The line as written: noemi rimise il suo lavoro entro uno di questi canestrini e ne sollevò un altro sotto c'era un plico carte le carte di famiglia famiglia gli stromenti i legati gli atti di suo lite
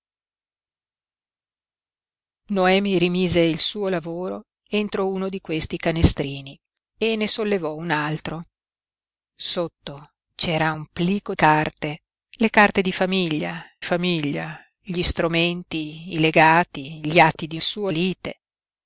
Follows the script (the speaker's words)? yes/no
yes